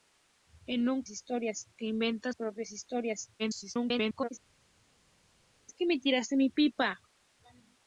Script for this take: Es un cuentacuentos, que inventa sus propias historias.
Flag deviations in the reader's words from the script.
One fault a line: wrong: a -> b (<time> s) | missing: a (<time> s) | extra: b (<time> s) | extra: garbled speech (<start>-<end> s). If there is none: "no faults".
wrong: cuentacuentos -> historias (1.1 s)
missing: sus (2.3 s)
extra: garbled speech (3.4-4.3 s)